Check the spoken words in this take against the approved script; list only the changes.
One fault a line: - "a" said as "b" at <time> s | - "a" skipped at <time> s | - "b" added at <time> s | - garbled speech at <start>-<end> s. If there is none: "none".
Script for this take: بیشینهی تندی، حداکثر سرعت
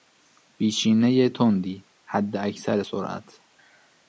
none